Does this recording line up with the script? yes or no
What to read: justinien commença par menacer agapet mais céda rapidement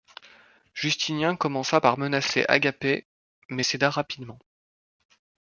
yes